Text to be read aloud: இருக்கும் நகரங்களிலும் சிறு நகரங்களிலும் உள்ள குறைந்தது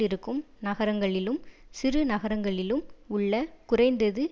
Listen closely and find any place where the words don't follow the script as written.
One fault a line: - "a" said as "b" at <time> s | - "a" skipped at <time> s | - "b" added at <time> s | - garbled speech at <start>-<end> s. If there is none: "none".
none